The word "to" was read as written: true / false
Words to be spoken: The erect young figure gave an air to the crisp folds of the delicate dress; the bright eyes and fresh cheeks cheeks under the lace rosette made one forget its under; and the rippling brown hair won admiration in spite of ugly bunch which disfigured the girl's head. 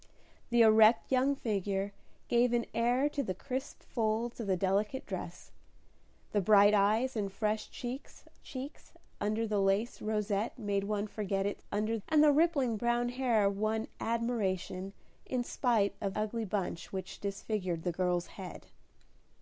true